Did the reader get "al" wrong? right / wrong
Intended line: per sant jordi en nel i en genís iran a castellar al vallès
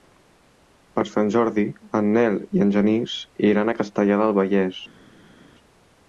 wrong